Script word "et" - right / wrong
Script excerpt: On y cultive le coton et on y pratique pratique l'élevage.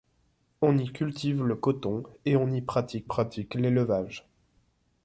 right